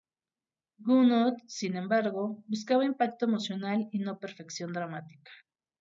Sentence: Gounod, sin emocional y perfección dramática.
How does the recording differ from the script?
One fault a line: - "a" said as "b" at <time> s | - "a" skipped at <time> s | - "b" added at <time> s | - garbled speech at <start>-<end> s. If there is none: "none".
- "embargo buscaba impacto" added at 1.8 s
- "no" added at 4.0 s